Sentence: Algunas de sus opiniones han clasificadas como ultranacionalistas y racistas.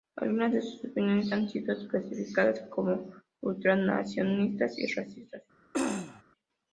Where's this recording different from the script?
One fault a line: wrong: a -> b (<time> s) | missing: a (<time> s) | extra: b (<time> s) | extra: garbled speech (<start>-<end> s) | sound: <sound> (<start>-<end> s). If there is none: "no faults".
extra: sido (1.5 s)
sound: throat clearing (5.7-6.2 s)